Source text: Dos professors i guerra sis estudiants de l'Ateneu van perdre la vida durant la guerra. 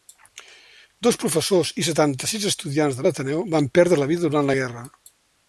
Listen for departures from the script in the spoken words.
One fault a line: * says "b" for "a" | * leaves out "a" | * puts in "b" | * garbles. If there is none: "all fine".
* says "setanta" for "guerra"